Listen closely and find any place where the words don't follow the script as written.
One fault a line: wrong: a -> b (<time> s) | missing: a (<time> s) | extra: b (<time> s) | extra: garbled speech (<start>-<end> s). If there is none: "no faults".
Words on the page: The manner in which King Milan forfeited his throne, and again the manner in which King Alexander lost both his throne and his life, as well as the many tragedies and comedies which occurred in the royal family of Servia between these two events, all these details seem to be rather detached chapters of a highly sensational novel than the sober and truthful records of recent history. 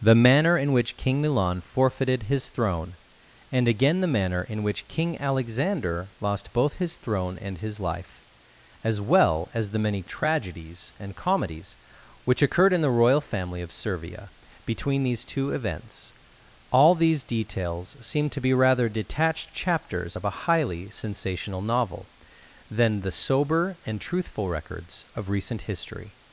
no faults